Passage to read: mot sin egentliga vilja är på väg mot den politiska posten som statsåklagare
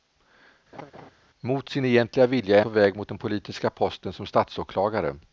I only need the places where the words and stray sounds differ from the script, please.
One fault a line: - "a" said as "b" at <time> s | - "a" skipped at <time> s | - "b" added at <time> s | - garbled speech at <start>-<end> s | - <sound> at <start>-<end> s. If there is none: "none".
- laugh at 0.7-1.1 s